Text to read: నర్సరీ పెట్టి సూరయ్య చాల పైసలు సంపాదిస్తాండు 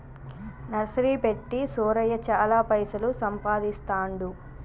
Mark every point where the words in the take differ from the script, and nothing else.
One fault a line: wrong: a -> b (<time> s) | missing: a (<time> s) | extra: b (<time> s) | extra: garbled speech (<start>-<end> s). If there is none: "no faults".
no faults